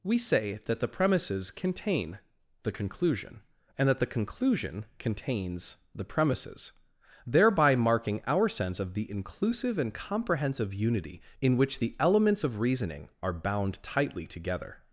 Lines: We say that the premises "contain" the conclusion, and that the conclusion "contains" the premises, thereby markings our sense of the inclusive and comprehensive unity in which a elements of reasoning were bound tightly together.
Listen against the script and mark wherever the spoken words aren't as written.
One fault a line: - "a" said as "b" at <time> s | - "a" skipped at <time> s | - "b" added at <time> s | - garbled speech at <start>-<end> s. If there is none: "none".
- "markings" said as "marking" at 7.7 s
- "a" said as "the" at 11.8 s
- "were" said as "are" at 13.2 s